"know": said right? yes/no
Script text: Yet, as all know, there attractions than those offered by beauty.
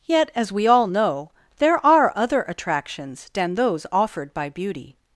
yes